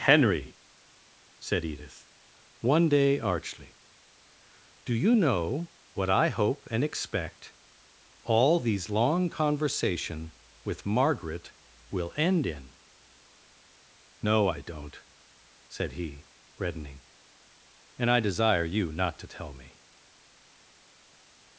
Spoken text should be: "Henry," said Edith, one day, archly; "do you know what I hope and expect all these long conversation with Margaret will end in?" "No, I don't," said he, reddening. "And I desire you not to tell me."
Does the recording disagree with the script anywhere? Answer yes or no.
no